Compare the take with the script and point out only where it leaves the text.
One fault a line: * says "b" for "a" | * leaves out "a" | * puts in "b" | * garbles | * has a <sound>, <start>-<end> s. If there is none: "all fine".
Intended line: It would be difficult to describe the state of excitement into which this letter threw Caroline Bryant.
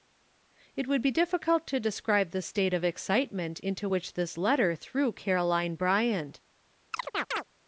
* has a chirp, 6.9-7.4 s